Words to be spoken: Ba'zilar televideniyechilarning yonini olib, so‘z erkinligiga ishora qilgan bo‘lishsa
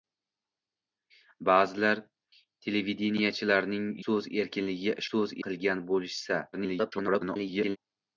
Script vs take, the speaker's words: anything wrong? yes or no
yes